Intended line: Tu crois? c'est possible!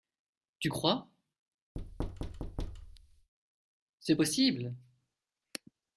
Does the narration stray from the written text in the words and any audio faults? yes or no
yes